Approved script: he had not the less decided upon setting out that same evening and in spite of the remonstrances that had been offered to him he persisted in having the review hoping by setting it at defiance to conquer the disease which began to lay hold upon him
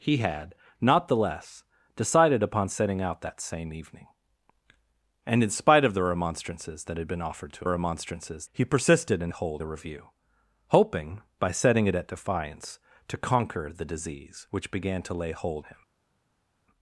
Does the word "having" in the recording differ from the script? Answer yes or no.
yes